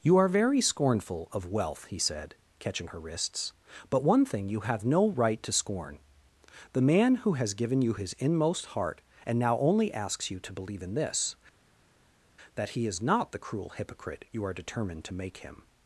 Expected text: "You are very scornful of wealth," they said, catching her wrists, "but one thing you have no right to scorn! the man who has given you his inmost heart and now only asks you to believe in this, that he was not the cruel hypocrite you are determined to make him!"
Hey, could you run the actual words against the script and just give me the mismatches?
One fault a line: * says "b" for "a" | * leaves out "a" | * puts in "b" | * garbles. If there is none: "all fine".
* says "he" for "they"
* says "is" for "was"